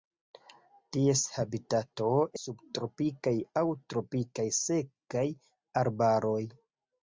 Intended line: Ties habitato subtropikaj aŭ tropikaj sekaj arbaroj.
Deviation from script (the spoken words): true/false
false